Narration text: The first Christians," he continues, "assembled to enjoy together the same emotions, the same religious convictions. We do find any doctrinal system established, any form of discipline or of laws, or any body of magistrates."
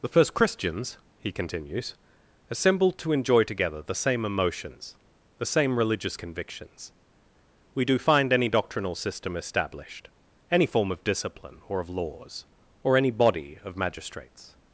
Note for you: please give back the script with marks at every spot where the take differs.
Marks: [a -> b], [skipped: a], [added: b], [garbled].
The first Christians," he continues, "assembled to enjoy together the same emotions, the same religious convictions. We do find any doctrinal system established, any form of discipline or of laws, or any body of magistrates."